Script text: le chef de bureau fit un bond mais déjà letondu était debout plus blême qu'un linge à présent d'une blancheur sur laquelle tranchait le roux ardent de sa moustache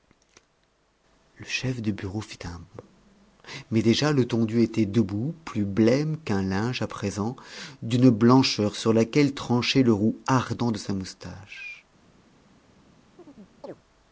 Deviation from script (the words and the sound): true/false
true